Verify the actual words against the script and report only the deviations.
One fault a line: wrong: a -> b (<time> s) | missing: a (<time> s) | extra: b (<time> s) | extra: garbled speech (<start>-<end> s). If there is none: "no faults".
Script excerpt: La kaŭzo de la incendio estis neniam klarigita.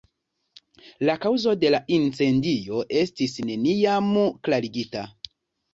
no faults